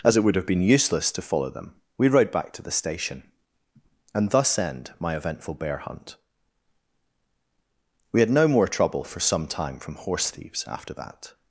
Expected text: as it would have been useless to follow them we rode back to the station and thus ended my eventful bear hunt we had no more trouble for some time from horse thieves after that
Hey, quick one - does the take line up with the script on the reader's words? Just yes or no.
no